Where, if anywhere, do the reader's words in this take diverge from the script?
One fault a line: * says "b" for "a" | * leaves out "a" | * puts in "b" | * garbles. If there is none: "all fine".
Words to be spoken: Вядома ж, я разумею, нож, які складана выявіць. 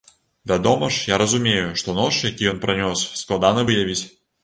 * puts in "што"
* puts in "ён пранёс"